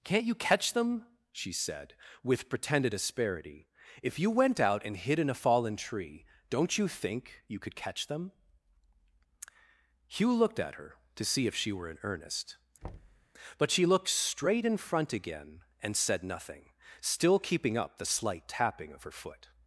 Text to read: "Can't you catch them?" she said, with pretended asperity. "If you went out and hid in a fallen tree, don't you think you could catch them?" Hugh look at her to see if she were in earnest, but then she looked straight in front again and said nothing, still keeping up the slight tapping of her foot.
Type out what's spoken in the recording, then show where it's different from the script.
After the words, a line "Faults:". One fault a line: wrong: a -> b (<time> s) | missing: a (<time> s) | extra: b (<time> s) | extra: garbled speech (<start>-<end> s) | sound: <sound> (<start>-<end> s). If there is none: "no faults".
"Can't you catch them?" she said, with pretended asperity. "If you went out and hid in a fallen tree, don't you think you could catch them?" Hugh looked at her to see if she were in earnest, but she looked straight in front again and said nothing, still keeping up the slight tapping of her foot.
Faults:
wrong: look -> looked (10.3 s)
sound: thud (12.8-13.3 s)
missing: then (13.7 s)